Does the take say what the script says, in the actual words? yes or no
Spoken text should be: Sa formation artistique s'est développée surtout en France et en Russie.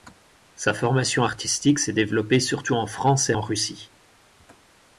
yes